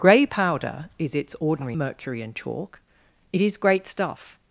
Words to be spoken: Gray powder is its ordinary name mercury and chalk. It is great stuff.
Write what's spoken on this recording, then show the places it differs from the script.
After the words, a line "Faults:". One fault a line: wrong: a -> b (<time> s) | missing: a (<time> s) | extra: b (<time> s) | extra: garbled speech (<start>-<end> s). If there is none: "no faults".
Gray powder is its ordinary mercury and chalk. It is great stuff.
Faults:
missing: name (1.8 s)